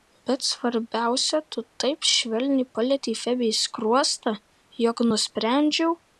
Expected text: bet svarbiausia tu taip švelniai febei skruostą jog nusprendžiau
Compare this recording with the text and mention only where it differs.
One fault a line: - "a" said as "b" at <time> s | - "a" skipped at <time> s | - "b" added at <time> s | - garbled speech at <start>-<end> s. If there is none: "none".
- "palietei" added at 2.7 s